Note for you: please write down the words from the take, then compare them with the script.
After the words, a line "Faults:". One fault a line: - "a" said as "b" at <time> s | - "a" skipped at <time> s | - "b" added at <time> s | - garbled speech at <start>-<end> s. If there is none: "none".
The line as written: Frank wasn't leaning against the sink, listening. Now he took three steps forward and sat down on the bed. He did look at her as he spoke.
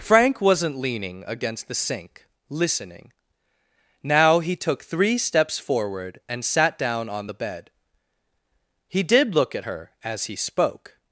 Frank wasn't leaning against the sink, listening. Now he took three steps forward and sat down on the bed. He did look at her as he spoke.
Faults:
none